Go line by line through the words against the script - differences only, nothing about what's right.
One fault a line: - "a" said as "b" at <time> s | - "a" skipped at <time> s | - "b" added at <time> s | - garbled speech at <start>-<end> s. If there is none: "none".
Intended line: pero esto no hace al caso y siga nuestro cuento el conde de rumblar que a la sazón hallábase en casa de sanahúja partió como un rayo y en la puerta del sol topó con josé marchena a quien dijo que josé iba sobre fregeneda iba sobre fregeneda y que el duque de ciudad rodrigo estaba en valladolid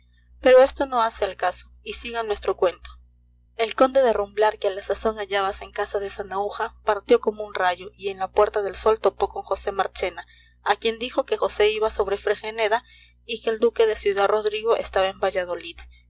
- "iba sobre fregeneda" skipped at 12.8 s